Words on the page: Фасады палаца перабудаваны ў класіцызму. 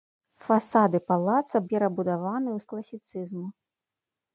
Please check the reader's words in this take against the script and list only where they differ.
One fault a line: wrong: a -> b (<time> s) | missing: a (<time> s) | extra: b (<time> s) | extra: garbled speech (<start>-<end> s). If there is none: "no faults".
no faults